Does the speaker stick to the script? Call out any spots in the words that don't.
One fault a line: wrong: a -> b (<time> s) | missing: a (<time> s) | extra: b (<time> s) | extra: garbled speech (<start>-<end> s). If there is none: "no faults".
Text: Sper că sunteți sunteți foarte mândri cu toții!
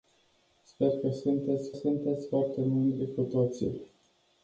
no faults